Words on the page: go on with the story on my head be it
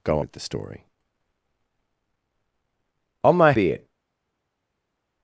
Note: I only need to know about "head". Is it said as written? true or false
false